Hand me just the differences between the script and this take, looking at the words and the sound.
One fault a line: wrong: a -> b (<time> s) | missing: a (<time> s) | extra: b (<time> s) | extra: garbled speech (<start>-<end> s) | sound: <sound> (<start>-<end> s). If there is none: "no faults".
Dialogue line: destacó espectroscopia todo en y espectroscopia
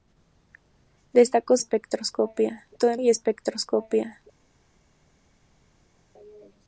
no faults